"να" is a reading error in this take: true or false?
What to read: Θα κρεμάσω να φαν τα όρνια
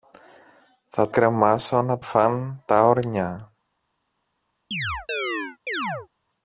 false